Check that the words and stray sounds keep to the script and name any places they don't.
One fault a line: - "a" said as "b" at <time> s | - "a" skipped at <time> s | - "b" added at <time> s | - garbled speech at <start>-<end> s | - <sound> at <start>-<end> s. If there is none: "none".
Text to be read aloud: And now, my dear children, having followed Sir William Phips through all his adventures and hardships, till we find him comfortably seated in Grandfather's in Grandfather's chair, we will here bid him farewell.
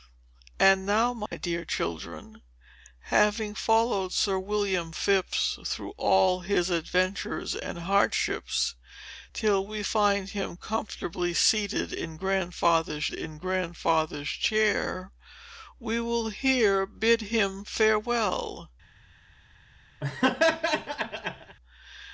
- dropout at 1.3-1.3 s
- laugh at 20.0-21.6 s